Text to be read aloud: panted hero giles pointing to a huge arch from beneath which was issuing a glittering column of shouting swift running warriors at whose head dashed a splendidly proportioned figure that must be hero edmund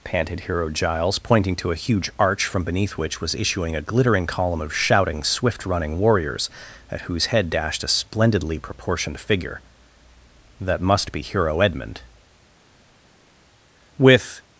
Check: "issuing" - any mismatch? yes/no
no